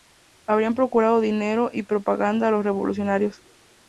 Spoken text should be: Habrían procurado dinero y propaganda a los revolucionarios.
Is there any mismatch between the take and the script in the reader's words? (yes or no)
no